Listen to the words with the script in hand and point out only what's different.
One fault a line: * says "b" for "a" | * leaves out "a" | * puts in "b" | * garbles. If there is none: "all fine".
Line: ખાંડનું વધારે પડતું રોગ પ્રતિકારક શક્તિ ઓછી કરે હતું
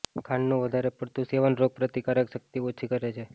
* puts in "સેવન"
* says "છે" for "હતું"